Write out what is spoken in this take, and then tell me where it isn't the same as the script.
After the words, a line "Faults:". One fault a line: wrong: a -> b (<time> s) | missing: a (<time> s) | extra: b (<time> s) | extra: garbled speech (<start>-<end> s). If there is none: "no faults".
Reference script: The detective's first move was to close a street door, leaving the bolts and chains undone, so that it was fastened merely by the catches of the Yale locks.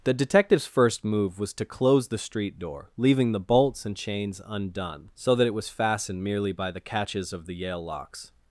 The detective's first move was to close the street door, leaving the bolts and chains undone, so that it was fastened merely by the catches of the Yale locks.
Faults:
wrong: a -> the (2.1 s)